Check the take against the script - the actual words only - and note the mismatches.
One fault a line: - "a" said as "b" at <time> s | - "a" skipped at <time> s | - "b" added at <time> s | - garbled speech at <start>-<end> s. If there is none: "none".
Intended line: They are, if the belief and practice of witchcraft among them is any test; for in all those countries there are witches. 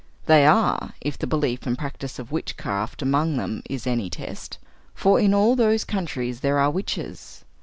none